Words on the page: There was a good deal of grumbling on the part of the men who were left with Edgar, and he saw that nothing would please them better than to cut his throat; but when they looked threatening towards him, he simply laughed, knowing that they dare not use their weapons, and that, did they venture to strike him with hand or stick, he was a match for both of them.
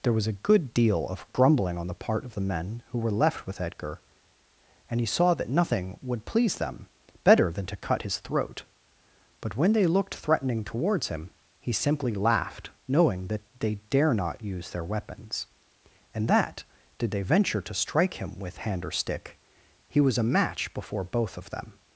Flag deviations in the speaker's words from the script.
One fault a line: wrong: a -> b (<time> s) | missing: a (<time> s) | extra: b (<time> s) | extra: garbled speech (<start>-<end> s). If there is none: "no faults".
wrong: for -> before (20.7 s)